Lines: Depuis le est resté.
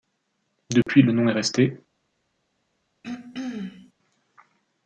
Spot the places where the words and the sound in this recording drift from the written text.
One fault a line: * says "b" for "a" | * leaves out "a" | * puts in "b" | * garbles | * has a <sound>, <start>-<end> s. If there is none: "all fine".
* has a dropout, 0.8-0.9 s
* puts in "nom"
* has a throat clearing, 3.0-3.9 s